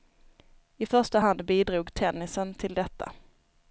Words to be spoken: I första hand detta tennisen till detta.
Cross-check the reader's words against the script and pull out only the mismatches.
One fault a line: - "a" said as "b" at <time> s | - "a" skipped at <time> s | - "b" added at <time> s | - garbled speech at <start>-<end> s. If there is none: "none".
- "detta" said as "bidrog" at 1.4 s